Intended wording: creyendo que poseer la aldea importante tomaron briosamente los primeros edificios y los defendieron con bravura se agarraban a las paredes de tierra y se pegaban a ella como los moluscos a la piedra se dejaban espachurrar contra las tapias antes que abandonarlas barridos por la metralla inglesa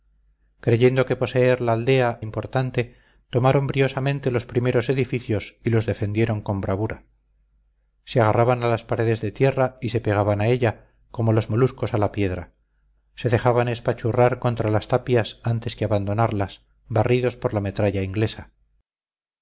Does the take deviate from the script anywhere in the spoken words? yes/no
no